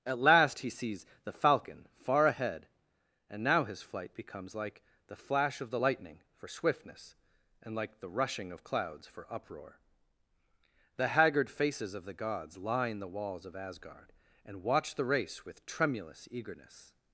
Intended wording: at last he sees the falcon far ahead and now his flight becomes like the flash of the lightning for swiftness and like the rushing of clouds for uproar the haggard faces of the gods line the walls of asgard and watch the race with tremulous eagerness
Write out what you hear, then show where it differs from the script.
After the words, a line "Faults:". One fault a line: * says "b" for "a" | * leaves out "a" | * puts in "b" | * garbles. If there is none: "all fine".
at last he sees the falcon far ahead and now his flight becomes like the flash of the lightning for swiftness and like the rushing of clouds for uproar the haggard faces of the gods line the walls of asgard and watch the race with tremulous eagerness
Faults:
all fine